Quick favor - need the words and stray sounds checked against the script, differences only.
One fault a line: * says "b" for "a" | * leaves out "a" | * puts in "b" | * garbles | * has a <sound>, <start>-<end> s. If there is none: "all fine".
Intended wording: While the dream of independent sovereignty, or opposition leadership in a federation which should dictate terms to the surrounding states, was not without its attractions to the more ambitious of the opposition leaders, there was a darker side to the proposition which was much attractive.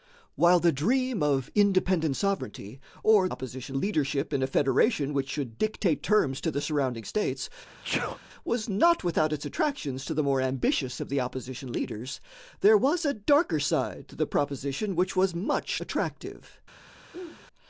* has a sneeze, 7.7-8.2 s
* has a throat clearing, 17.1-17.5 s